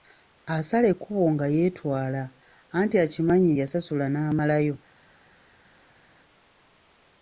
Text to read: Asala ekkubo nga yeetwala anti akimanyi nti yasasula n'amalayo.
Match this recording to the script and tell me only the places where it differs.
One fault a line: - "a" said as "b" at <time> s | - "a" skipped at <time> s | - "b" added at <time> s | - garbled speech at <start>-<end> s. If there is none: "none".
- "nti" skipped at 3.5 s